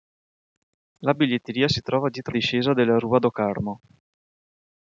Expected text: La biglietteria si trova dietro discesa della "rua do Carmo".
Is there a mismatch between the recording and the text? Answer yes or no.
no